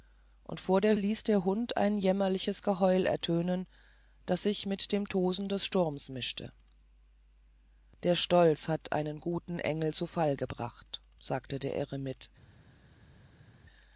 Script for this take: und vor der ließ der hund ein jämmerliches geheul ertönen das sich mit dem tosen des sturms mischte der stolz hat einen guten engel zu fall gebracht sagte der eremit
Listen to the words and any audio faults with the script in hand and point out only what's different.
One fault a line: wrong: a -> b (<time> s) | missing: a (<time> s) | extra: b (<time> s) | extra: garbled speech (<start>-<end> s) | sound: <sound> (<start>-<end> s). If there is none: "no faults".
no faults